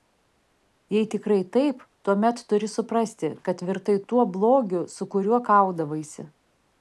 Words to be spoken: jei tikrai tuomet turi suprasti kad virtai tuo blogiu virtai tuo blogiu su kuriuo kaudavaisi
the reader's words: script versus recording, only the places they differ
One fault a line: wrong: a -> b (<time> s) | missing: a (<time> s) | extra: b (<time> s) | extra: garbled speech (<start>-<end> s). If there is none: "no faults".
extra: taip (1.6 s)
missing: virtai tuo blogiu (4.8 s)